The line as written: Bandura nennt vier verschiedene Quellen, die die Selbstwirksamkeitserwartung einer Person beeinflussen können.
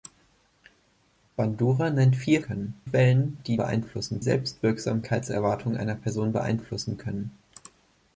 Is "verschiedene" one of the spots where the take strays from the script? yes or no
yes